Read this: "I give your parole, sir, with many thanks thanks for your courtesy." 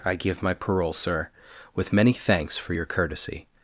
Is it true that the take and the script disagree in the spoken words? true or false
true